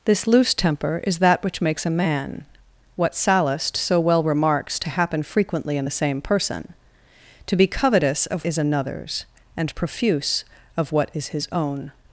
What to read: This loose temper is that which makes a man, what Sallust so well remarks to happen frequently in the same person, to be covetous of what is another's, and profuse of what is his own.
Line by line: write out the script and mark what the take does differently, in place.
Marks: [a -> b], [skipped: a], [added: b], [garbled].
This loose temper is that which makes a man, what Sallust so well remarks to happen frequently in the same person, to be covetous of [skipped: what] is another's, and profuse of what is his own.